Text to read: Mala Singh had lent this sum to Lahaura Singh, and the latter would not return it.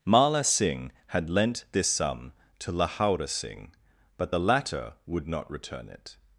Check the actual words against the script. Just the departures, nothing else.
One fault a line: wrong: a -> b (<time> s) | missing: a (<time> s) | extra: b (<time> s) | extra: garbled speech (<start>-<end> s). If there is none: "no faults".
wrong: and -> but (4.2 s)